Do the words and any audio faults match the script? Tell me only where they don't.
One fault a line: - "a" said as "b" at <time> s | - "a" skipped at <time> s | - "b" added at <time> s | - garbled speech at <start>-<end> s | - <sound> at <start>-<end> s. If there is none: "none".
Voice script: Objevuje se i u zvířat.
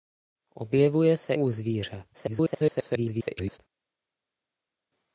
- "i" skipped at 1.3 s
- garbled speech at 2.1-3.6 s